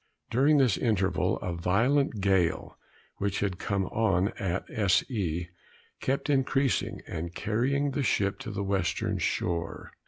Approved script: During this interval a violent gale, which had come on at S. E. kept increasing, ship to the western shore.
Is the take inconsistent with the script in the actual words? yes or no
yes